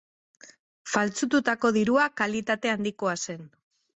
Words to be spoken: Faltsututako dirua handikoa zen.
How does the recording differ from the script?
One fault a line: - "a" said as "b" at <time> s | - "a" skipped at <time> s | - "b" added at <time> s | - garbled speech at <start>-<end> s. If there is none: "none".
- "kalitate" added at 2.2 s